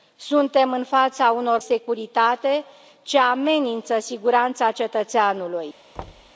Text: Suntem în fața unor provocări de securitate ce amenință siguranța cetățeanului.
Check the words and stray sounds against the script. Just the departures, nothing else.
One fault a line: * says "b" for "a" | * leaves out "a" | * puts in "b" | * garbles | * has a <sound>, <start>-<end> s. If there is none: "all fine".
* leaves out "provocări de"
* has a thud, 6.0-6.3 s